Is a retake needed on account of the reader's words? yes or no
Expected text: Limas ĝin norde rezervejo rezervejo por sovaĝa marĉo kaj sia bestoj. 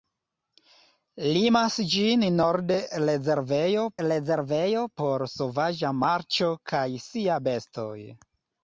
no